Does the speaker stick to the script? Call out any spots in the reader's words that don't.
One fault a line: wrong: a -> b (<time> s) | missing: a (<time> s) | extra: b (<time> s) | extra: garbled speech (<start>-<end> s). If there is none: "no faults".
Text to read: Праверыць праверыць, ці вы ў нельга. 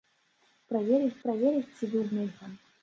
no faults